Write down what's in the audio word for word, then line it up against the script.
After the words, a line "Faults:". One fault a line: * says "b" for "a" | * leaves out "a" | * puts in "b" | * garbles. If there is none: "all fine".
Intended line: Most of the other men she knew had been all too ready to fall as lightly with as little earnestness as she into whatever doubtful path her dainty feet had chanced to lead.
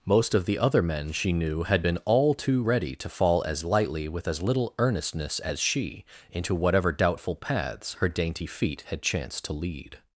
Most of the other men she knew had been all too ready to fall as lightly with as little earnestness as she into whatever doubtful paths her dainty feet had chanced to lead.
Faults:
* says "paths" for "path"